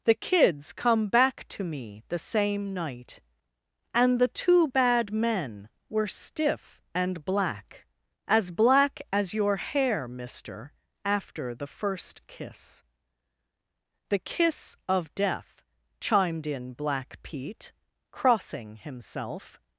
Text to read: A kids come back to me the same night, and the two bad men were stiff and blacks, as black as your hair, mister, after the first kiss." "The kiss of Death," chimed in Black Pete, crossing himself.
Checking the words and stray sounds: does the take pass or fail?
fail